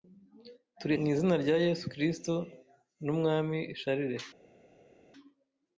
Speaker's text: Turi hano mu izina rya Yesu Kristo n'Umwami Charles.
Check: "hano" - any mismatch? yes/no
yes